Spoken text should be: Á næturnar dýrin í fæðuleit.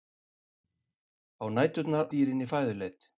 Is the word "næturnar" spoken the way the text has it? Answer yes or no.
yes